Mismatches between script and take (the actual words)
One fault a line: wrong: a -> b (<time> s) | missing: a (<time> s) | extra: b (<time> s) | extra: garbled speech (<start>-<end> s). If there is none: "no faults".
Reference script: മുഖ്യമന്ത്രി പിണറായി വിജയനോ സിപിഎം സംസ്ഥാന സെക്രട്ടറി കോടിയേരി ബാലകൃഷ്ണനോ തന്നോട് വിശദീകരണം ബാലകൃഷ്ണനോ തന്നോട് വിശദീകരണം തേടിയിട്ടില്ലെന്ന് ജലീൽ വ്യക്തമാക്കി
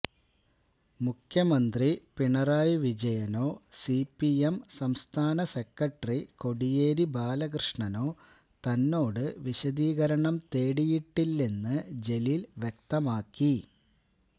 missing: ബാലകൃഷ്ണനോ തന്നോട് വിശദീകരണം (10.4 s)